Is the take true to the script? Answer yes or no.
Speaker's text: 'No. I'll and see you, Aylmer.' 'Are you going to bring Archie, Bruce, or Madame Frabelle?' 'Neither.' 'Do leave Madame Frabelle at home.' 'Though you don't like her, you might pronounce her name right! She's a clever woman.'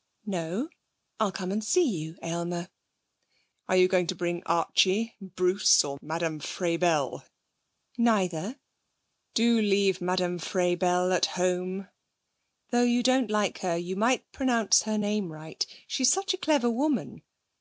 no